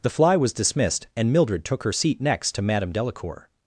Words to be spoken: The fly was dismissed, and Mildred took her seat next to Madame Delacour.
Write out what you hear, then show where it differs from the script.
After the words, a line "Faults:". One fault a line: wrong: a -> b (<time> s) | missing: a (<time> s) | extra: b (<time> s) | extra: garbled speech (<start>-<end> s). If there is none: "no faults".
The fly was dismissed, and Mildred took her seat next to Madame Delacour.
Faults:
no faults